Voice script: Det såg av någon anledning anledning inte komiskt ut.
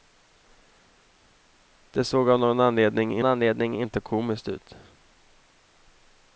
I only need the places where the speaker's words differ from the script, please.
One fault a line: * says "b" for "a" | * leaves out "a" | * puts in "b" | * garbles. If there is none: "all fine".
all fine